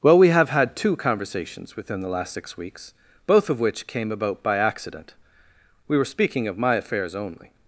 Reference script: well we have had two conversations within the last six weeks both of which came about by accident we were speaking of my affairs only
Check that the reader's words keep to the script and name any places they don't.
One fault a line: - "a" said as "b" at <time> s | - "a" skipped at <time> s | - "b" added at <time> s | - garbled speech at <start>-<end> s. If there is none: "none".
none